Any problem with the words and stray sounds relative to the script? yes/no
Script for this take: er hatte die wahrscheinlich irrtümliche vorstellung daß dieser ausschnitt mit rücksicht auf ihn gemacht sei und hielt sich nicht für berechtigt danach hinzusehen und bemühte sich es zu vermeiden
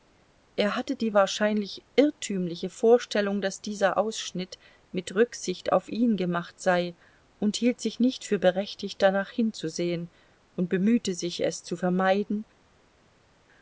no